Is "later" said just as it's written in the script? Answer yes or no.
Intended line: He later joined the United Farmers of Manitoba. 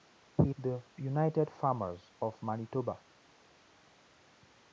no